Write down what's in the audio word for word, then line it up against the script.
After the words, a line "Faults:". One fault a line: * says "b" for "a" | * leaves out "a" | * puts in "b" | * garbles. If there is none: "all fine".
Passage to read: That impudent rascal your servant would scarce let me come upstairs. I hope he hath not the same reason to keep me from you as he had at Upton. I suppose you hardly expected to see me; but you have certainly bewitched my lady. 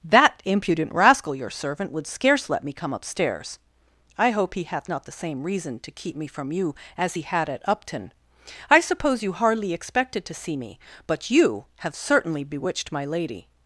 That impudent rascal your servant would scarce let me come upstairs. I hope he hath not the same reason to keep me from you as he had at Upton. I suppose you hardly expected to see me; but you have certainly bewitched my lady.
Faults:
all fine